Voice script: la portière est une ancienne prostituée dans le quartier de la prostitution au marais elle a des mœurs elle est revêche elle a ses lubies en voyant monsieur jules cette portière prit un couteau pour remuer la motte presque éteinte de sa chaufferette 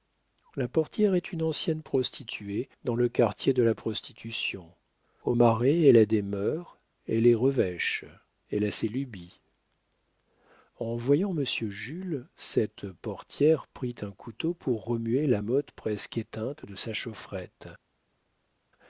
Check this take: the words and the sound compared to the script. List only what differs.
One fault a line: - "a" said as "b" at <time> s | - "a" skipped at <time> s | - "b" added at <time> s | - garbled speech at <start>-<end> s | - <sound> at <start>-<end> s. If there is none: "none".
none